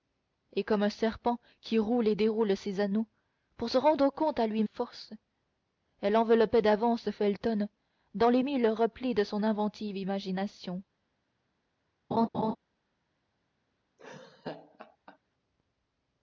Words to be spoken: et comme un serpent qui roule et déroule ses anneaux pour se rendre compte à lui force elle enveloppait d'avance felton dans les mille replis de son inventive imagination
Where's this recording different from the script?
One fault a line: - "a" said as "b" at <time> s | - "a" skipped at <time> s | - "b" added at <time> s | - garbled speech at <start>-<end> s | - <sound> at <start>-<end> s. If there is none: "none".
- laugh at 12.1-12.6 s
- laugh at 14.0-15.2 s